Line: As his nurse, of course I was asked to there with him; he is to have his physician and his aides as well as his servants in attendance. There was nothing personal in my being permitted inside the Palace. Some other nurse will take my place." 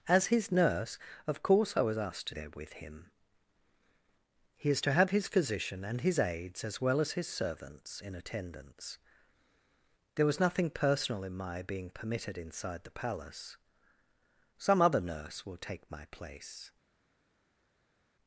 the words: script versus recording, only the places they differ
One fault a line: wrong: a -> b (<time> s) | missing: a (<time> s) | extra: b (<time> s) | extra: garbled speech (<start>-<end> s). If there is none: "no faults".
no faults